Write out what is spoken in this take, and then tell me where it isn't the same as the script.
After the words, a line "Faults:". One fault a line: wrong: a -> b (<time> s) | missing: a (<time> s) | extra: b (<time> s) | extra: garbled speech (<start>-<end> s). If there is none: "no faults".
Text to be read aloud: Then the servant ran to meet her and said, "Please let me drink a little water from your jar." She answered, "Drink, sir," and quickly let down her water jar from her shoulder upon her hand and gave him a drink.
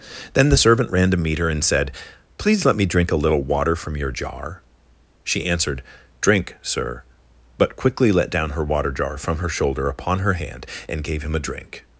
Then the servant ran to meet her and said, "Please let me drink a little water from your jar." She answered, "Drink, sir," but quickly let down her water jar from her shoulder upon her hand and gave him a drink.
Faults:
wrong: and -> but (7.6 s)